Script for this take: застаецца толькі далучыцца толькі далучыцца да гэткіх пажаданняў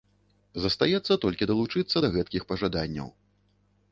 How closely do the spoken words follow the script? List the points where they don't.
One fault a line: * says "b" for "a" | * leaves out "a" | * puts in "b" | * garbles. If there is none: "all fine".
* leaves out "толькі далучыцца"